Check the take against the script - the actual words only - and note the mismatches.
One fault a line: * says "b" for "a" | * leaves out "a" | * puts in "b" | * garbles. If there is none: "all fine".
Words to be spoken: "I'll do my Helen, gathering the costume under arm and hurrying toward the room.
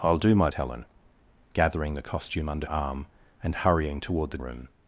all fine